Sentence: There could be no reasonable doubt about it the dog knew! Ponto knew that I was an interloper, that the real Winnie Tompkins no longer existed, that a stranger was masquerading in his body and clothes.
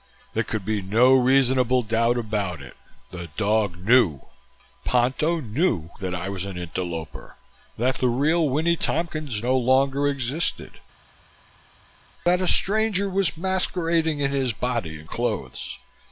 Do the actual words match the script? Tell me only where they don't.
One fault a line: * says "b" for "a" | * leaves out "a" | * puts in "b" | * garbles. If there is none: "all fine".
all fine